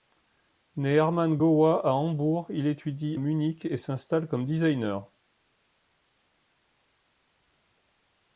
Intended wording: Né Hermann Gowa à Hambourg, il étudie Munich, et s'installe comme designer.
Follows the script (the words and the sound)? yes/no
yes